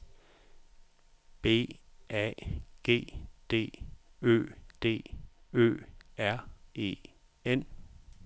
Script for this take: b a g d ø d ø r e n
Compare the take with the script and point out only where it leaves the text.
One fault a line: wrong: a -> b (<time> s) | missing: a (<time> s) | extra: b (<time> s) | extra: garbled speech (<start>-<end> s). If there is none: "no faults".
no faults